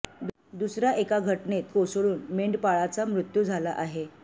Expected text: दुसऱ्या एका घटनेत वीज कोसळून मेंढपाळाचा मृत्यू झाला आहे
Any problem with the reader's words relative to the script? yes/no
yes